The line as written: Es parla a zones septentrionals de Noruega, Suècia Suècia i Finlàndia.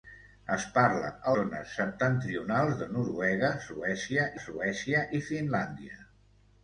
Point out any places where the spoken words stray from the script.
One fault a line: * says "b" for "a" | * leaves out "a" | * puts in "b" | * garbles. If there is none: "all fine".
all fine